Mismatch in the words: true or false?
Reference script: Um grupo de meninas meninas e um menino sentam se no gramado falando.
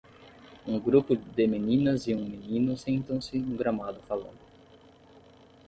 true